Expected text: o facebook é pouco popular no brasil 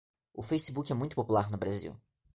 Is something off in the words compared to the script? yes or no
yes